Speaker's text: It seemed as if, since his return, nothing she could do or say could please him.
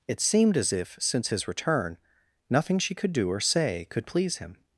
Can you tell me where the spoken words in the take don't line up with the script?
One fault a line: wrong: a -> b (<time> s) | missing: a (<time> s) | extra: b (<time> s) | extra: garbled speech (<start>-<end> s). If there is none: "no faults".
no faults